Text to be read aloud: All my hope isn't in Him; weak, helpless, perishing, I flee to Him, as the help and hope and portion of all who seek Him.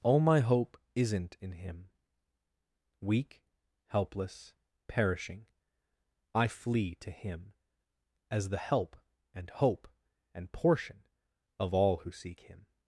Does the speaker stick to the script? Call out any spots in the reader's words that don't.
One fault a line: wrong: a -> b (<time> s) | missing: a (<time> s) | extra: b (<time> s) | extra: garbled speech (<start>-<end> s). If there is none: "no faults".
no faults